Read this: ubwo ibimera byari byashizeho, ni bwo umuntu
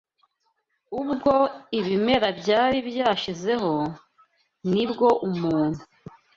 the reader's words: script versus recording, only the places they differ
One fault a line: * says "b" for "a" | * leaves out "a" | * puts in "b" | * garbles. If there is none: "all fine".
all fine